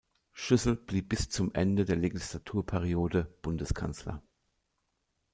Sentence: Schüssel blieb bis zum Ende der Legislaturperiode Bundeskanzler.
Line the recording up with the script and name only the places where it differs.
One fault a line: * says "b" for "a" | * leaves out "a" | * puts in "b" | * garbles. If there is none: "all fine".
all fine